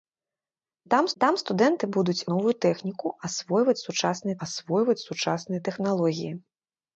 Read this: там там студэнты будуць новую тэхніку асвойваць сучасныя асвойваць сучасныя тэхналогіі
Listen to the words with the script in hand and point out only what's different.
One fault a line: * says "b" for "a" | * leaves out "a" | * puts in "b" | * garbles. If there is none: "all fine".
all fine